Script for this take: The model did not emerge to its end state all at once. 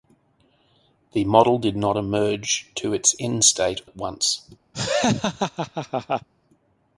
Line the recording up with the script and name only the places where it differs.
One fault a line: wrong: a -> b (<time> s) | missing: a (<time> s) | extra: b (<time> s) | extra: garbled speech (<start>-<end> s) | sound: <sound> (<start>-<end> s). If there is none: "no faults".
missing: all (3.8 s)
sound: laugh (4.7-6.3 s)